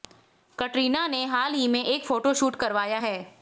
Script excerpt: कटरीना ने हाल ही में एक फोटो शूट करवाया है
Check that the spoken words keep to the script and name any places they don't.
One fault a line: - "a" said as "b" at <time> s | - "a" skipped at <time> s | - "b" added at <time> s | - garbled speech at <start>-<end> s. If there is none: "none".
none